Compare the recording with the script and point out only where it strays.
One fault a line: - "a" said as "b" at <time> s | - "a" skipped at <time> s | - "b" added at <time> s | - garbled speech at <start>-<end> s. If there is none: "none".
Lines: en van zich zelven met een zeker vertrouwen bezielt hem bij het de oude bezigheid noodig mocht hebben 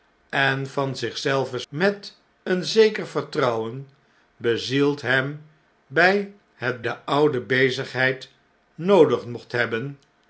none